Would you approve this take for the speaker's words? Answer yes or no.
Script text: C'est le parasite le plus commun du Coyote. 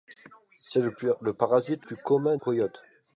no